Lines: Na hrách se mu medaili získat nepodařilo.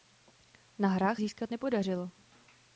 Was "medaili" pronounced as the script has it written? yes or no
no